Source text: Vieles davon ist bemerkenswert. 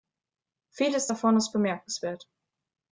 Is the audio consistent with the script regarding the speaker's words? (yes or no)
yes